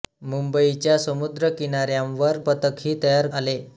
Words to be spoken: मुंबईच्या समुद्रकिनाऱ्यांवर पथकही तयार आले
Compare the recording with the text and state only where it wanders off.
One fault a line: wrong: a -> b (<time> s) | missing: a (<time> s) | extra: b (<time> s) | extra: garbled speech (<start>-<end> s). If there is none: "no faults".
no faults